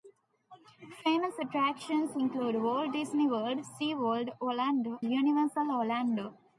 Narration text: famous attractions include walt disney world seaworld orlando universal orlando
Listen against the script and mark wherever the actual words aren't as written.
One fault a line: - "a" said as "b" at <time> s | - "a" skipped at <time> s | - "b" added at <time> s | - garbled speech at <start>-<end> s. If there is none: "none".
none